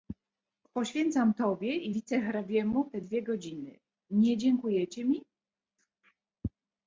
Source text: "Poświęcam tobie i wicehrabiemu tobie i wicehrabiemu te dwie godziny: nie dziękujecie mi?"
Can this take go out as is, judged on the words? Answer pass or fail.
fail